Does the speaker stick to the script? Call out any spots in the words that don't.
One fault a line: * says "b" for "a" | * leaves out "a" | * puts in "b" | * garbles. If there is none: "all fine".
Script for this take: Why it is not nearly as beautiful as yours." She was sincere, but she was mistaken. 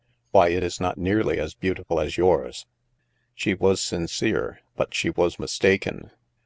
all fine